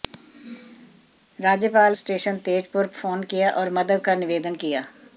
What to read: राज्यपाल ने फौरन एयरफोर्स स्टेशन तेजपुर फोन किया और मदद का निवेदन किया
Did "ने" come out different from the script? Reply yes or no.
yes